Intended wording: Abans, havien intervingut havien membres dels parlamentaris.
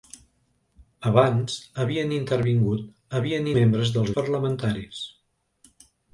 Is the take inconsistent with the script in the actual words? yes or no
no